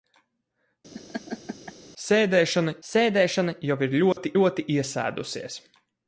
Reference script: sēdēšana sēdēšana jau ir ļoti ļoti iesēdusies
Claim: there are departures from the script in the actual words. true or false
false